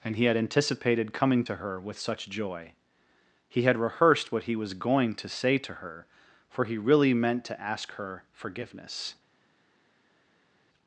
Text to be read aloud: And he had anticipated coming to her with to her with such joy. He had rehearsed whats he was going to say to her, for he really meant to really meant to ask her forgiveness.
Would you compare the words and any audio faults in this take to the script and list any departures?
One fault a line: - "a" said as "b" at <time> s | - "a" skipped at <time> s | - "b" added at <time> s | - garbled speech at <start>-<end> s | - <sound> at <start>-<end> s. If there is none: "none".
- "to her with" skipped at 2.0 s
- "whats" said as "what" at 4.3 s
- "really meant to" skipped at 7.6 s